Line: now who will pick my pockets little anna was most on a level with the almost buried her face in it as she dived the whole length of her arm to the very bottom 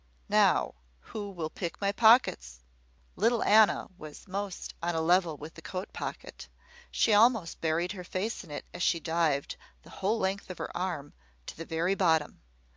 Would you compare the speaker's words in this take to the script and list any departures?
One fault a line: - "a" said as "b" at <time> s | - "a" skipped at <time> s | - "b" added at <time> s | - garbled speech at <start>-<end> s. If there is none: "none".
- "coat pocket she" added at 5.6 s